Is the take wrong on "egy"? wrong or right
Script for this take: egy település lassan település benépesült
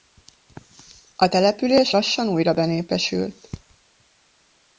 wrong